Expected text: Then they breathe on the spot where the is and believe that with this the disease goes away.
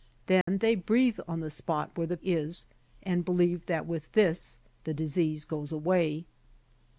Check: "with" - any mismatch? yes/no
no